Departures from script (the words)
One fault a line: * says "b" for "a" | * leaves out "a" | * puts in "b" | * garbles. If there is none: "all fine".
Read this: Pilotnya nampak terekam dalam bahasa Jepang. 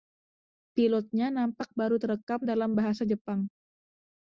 * puts in "baru"